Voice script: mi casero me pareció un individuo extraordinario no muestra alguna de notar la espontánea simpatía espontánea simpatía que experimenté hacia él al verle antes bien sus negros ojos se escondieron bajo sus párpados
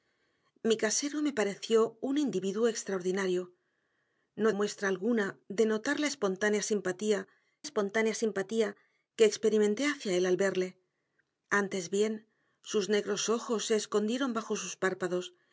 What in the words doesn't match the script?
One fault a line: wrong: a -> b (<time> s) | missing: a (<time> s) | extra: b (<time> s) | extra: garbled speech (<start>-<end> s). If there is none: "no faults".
no faults